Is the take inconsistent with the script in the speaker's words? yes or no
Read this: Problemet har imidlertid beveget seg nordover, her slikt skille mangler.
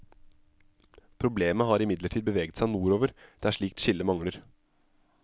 yes